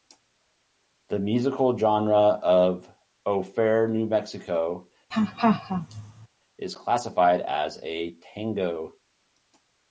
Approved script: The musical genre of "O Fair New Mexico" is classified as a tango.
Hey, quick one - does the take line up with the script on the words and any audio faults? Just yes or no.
no